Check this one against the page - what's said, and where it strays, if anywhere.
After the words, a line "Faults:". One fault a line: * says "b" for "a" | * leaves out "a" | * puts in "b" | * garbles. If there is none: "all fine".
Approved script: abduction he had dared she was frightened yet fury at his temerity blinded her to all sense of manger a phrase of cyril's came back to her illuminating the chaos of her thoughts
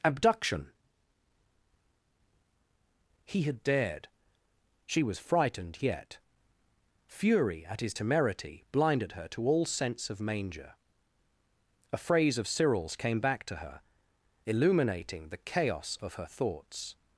abduction he had dared she was frightened yet fury at his temerity blinded her to all sense of manger a phrase of cyril's came back to her illuminating the chaos of her thoughts
Faults:
all fine